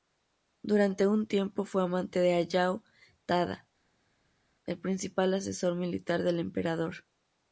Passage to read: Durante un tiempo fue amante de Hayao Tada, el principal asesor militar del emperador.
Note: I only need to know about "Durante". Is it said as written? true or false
true